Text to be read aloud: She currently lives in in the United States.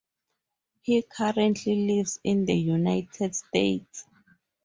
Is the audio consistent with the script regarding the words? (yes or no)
no